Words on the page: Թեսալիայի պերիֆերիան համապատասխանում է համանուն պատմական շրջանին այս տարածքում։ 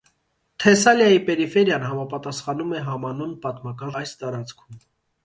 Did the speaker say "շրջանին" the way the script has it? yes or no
no